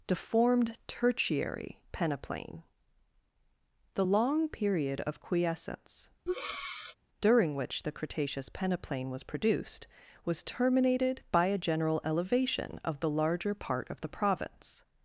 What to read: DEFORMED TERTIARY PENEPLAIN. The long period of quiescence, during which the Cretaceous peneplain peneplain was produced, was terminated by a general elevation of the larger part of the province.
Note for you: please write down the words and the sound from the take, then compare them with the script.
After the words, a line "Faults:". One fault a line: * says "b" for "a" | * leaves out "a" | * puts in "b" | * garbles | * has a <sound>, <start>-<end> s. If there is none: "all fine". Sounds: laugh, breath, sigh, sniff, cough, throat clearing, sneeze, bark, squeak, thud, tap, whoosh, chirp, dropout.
DEFORMED TERTIARY PENEPLAIN. The long period of quiescence, during which the Cretaceous peneplain was produced, was terminated by a general elevation of the larger part of the province.
Faults:
* has a breath, 6.3-7.0 s
* leaves out "peneplain"